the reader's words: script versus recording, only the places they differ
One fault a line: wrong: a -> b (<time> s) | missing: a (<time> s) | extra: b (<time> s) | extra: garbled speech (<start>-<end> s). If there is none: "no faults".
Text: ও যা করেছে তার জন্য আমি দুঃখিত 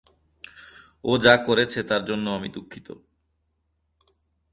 no faults